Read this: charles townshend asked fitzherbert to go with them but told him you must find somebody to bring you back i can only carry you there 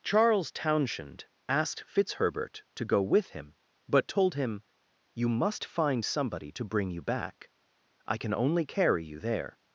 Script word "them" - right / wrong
wrong